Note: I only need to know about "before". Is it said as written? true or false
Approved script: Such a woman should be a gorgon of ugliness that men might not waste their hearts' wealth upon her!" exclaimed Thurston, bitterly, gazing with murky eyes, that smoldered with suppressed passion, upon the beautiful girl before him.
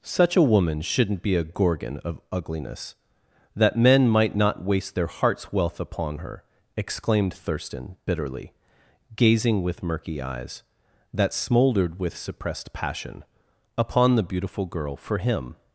false